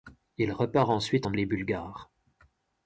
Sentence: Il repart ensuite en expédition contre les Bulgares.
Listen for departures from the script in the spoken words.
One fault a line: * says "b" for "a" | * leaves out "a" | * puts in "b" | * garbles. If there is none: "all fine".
* leaves out "expédition contre"